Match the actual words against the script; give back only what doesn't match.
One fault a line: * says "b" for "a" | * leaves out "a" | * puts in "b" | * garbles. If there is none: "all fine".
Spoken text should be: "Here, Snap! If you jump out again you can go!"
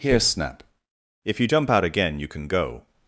all fine